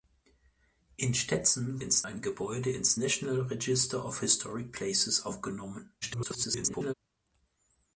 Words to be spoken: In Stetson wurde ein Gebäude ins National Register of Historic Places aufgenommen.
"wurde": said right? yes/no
no